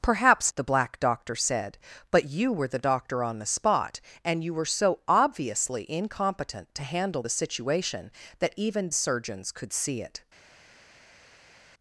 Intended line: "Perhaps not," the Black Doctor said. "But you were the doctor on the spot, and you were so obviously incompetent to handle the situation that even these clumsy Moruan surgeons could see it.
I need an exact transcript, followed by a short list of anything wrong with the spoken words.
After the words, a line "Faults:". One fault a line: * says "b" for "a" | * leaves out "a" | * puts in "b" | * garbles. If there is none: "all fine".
"Perhaps," the Black Doctor said. "But you were the doctor on the spot, and you were so obviously incompetent to handle the situation that even surgeons could see it.
Faults:
* leaves out "not"
* leaves out "these clumsy Moruan"